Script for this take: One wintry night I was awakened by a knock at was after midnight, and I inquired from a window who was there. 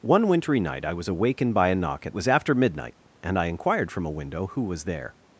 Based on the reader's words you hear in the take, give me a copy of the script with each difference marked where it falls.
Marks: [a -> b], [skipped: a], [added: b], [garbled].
One wintry night I was awakened by a knock at was after midnight, and I inquired from a window who was there.